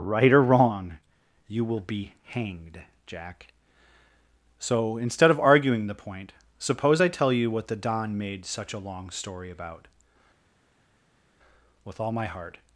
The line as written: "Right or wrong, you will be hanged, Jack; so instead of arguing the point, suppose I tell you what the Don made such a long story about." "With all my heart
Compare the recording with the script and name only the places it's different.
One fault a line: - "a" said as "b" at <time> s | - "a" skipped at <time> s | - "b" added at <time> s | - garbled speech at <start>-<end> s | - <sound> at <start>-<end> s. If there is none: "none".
none